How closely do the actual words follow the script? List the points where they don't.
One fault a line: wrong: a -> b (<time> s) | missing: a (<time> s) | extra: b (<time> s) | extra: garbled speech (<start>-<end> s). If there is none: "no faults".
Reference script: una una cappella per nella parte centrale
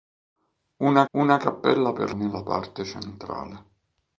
no faults